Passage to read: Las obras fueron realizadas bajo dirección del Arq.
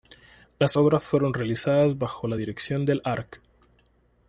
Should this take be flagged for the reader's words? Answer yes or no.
yes